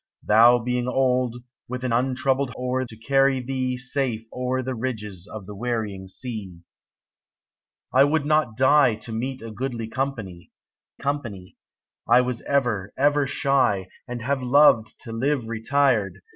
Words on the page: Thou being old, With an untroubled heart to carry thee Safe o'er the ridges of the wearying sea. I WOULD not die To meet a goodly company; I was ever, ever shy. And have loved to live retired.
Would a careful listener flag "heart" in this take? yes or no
yes